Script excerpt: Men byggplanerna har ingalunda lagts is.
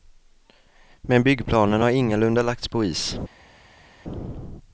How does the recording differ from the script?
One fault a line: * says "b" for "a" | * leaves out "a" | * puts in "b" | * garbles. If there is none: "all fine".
* puts in "på"